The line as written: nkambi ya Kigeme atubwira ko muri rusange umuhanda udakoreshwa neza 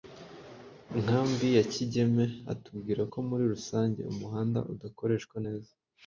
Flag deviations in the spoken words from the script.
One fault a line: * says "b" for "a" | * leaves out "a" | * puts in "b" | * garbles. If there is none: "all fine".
all fine